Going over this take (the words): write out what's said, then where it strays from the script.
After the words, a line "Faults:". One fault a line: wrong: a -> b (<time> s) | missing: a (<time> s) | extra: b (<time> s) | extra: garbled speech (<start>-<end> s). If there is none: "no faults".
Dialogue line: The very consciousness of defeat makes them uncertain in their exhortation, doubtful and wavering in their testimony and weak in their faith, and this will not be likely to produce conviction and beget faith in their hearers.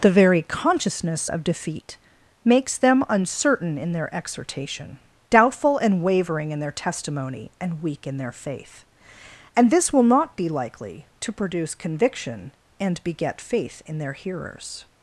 The very consciousness of defeat makes them uncertain in their exhortation, doubtful and wavering in their testimony and weak in their faith, and this will not be likely to produce conviction and beget faith in their hearers.
Faults:
no faults